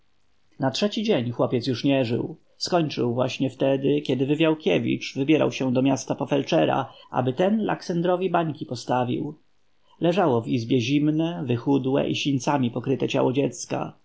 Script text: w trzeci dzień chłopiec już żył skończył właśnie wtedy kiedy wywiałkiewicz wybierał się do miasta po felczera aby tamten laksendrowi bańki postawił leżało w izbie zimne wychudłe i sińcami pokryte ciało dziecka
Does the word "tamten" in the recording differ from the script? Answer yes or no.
yes